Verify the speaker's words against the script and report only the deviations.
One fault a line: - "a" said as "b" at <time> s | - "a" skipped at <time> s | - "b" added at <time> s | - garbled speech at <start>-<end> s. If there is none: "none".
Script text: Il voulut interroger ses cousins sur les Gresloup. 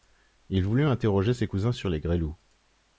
none